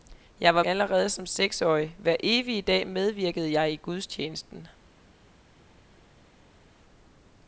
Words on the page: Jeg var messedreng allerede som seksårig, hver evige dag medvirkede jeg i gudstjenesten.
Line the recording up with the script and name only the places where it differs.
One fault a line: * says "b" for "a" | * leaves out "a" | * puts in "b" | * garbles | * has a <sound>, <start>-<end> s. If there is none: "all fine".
* leaves out "messedreng"